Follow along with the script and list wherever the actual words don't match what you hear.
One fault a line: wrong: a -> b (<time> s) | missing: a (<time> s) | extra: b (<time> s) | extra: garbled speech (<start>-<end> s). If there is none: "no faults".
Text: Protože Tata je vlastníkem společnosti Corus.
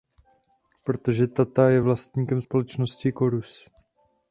no faults